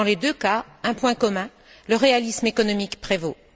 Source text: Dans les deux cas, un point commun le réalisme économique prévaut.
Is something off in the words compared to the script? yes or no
no